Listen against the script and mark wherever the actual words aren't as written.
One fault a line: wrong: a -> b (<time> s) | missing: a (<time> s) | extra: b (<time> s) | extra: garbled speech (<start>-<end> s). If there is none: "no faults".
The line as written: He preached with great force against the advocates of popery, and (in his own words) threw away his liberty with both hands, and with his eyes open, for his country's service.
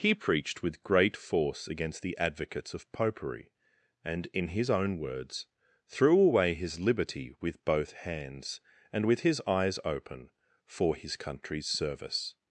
no faults